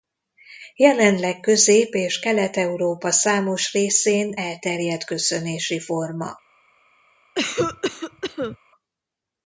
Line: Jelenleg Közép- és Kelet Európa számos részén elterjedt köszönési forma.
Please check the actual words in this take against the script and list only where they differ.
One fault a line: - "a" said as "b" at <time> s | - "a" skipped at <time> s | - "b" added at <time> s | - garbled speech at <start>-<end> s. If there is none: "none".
none